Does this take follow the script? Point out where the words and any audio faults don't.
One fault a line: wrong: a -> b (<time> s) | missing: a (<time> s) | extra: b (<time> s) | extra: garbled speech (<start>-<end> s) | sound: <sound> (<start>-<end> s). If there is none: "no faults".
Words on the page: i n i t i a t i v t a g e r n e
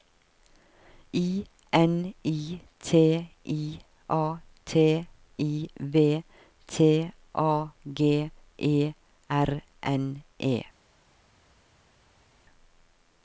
no faults